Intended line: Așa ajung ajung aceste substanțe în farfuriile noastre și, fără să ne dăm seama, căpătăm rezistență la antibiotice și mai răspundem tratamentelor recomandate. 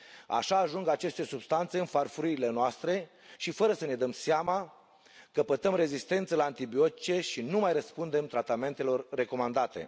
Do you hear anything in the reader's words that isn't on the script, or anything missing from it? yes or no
yes